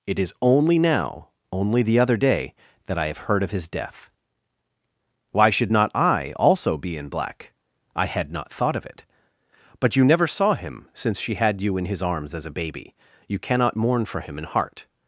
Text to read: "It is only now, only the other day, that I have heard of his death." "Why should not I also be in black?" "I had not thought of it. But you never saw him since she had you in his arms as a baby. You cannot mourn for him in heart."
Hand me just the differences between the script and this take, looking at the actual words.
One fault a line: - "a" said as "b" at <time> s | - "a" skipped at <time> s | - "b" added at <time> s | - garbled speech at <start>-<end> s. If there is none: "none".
none